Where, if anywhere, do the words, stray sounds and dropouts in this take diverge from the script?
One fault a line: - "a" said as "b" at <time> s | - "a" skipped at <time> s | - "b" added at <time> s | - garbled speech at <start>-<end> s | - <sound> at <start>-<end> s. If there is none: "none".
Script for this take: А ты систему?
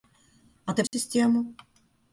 - dropout at 0.9-0.9 s